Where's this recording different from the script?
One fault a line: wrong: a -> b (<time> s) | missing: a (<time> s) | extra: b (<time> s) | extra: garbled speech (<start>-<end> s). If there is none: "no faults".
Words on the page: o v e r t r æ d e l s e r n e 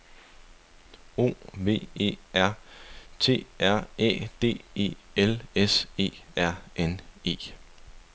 no faults